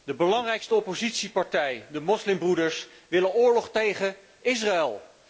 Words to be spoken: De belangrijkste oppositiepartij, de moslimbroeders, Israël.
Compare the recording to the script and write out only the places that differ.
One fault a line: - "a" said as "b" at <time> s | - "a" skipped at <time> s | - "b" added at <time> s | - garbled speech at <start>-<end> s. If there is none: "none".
- "wil oorlog tegen" added at 3.1 s